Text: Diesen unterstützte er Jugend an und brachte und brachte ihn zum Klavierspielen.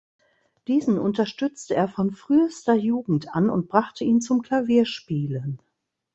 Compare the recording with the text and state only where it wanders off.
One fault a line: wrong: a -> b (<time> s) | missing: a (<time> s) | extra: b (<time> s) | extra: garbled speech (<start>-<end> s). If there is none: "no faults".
extra: von frühester (1.9 s)
missing: und brachte (4.0 s)